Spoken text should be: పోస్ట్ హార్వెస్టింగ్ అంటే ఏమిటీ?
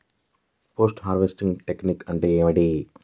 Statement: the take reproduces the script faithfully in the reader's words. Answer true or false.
false